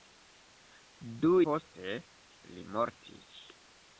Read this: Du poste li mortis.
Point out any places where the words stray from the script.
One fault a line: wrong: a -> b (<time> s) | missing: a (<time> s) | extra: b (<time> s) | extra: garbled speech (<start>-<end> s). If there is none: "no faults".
no faults